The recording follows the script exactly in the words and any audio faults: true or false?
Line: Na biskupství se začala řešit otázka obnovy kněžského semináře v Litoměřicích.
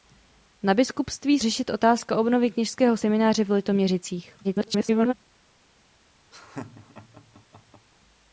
false